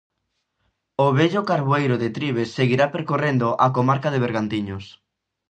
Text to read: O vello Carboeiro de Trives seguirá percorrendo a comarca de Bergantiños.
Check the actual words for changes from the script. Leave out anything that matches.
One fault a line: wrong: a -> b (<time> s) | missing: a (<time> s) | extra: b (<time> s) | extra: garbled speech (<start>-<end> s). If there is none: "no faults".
no faults